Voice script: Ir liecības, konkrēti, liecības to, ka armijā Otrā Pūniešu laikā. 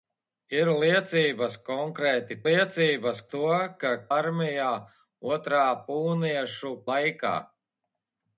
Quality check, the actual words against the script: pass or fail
pass